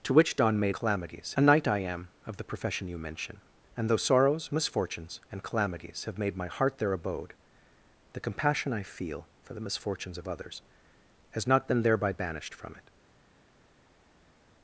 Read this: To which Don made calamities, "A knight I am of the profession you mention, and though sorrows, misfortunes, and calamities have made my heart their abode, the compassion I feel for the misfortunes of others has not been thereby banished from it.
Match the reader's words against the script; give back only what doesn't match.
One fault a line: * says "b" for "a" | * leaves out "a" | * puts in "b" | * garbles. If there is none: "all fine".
all fine